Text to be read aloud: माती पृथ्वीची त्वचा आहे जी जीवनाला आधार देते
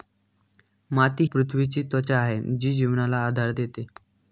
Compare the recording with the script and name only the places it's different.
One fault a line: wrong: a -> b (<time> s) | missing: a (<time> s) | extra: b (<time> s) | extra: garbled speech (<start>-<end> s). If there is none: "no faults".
no faults